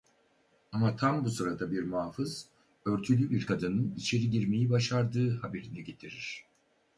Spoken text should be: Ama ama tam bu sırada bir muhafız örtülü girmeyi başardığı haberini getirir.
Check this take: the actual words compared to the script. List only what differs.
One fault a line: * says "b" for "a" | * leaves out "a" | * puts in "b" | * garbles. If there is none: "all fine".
* leaves out "ama"
* puts in "bir kadının içeri"